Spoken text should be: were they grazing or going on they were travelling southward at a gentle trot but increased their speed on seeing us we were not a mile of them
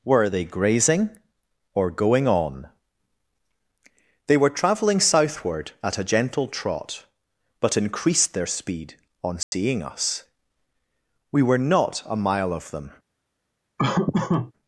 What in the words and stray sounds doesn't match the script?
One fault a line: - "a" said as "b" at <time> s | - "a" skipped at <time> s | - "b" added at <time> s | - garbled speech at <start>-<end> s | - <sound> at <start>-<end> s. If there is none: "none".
- dropout at 9.4-9.5 s
- laugh at 13.8-14.5 s